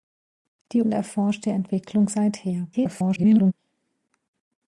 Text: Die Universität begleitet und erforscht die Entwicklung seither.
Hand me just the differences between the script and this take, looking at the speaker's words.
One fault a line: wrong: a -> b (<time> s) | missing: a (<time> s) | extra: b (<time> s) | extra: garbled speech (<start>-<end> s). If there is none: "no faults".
missing: Universität begleitet (0.8 s)
extra: garbled speech (2.7-3.5 s)